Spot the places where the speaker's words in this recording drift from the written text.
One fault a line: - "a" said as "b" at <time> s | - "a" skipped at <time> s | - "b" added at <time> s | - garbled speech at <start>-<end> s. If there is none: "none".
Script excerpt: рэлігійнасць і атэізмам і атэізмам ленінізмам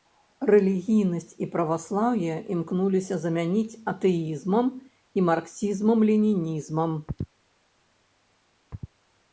- "праваслаўе імкнуліся замяніць" added at 1.6 s
- "атэізмам" said as "марксізмам" at 5.3 s